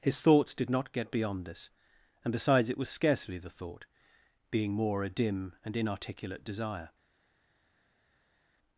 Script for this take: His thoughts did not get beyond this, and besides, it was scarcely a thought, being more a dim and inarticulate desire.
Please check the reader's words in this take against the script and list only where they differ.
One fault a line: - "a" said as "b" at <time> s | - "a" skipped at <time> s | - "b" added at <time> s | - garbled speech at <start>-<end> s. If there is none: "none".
- "a" said as "the" at 3.4 s